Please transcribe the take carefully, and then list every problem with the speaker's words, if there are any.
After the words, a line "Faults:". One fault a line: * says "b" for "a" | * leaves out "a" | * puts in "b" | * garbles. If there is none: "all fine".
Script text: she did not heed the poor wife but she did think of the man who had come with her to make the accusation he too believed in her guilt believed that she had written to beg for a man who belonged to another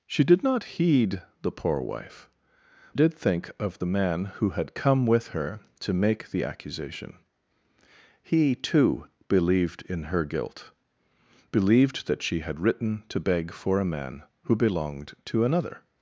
she did not heed the poor wife did think of the man who had come with her to make the accusation he too believed in her guilt believed that she had written to beg for a man who belonged to another
Faults:
* leaves out "but she"